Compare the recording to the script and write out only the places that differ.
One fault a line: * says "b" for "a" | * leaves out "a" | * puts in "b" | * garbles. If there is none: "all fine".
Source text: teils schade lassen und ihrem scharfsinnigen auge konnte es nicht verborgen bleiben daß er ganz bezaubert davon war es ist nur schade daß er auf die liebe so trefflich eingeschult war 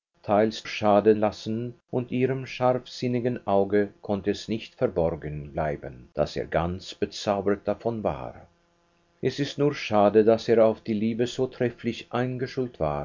all fine